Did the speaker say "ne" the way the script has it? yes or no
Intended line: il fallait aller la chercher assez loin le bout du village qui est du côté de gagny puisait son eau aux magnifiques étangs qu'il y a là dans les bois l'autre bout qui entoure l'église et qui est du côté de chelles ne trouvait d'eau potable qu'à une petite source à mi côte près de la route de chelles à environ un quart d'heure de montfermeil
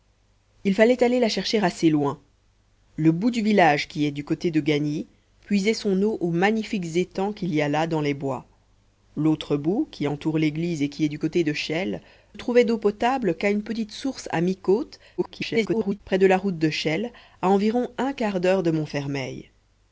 no